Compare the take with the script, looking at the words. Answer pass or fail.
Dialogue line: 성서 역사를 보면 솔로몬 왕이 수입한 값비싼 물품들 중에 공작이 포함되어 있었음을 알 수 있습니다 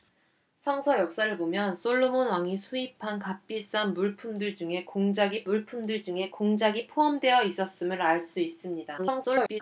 fail